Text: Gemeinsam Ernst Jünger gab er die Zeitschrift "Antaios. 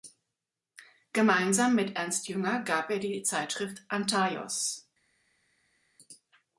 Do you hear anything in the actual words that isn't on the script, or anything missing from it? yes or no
yes